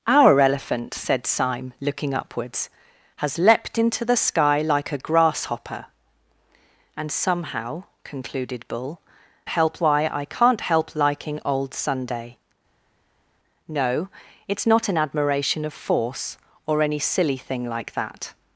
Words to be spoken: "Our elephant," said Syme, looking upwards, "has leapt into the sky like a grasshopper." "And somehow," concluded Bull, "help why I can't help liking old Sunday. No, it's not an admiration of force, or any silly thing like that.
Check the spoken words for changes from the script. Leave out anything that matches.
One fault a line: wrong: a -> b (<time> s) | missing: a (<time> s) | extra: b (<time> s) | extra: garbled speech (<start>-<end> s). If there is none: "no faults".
no faults